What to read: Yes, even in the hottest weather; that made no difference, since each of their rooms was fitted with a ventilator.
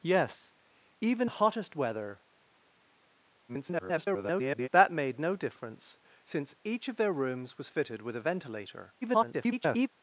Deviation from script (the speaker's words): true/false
true